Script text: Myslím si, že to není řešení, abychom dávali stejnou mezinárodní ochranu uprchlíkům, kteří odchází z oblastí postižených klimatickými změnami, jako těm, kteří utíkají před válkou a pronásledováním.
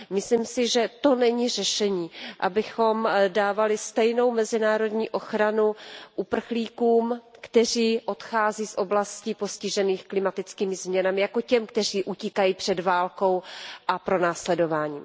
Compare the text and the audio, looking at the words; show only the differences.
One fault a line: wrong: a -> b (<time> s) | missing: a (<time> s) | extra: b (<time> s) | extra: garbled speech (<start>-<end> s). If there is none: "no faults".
no faults